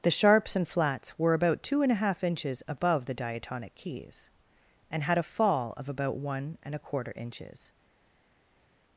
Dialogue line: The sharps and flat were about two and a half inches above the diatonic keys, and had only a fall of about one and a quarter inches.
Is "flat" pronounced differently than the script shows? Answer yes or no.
yes